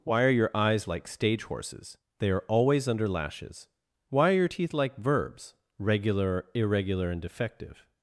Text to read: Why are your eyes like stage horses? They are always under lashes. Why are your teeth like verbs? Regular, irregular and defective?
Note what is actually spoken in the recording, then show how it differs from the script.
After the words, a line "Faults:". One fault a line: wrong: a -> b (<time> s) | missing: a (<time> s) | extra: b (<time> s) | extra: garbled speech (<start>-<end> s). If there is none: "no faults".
Why are your eyes like stage horses? They are always under lashes. Why are your teeth like verbs? Regular, irregular and defective?
Faults:
no faults